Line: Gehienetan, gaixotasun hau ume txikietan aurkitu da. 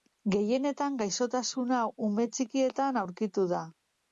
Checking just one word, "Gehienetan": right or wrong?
right